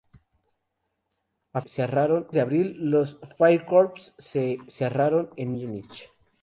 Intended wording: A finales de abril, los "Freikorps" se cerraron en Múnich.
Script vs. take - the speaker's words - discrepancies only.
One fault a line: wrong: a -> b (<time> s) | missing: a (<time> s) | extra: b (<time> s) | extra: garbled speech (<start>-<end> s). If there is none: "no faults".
wrong: finales -> cerraron (1.6 s)